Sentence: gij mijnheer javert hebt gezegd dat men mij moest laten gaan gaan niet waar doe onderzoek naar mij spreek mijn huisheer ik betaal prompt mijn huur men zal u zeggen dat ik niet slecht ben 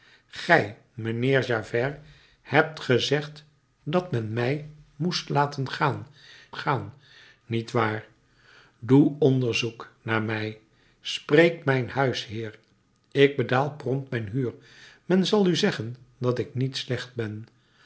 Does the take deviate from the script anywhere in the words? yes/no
no